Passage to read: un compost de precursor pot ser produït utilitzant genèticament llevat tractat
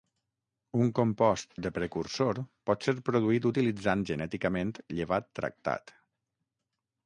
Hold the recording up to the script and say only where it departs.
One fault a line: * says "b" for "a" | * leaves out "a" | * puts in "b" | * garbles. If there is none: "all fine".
all fine